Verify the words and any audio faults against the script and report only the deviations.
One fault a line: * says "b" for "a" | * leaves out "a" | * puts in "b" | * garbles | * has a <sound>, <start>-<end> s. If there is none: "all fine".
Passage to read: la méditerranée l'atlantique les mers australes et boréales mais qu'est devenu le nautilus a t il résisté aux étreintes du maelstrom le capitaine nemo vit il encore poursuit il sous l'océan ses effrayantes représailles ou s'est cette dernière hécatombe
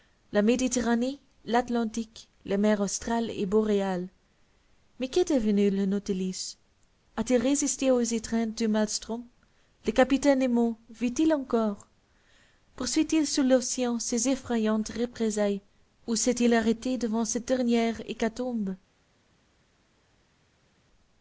* puts in "il arrêté devant"